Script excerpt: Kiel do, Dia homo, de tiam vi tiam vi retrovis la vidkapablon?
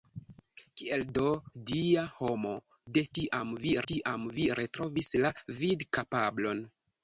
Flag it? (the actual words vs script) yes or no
no